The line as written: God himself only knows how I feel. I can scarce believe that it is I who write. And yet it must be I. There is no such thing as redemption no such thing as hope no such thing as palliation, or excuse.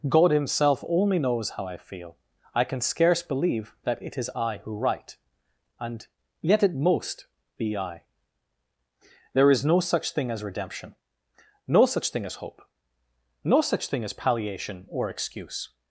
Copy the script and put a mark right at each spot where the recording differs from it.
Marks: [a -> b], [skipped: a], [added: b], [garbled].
God himself only knows how I feel. I can scarce believe that it is I who write. And yet it [must -> most] be I. There is no such thing as redemption no such thing as hope no such thing as palliation, or excuse.